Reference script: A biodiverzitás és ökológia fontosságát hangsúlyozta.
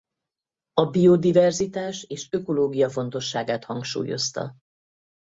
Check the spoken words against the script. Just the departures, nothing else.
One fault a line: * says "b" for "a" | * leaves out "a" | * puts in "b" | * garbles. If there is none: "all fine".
all fine